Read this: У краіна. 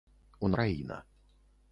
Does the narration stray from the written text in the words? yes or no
no